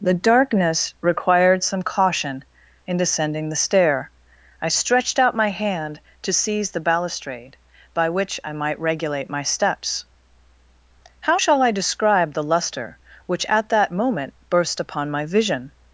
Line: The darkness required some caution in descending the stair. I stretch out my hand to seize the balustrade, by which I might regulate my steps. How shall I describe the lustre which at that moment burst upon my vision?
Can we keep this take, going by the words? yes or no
no